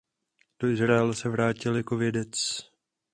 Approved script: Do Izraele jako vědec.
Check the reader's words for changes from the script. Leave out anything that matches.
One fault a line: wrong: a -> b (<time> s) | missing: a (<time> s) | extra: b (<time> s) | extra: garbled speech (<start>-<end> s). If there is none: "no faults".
extra: se vrátil (1.1 s)